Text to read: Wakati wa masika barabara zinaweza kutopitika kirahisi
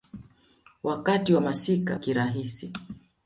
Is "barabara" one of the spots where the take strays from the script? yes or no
yes